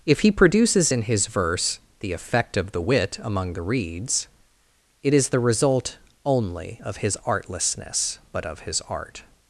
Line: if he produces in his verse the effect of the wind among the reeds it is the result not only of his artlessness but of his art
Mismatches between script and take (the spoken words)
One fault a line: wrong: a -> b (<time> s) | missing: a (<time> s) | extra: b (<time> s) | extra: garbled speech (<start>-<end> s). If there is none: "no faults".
wrong: wind -> wit (2.8 s)
missing: not (6.0 s)